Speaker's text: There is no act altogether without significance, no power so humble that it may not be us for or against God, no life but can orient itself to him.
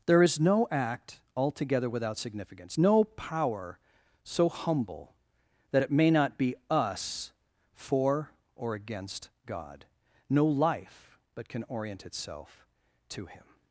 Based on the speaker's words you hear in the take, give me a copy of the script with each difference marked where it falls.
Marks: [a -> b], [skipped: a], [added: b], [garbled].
There is no act altogether without significance, no power so humble that it may not be us for or against God, no life but can orient itself to him.